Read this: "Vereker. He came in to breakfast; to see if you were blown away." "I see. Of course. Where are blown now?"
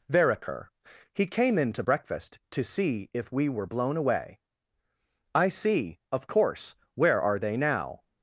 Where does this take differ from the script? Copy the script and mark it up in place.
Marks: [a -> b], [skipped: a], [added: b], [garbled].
"Vereker. He came in to breakfast; to see if [you -> we] were blown away." "I see. Of course. Where are [blown -> they] now?"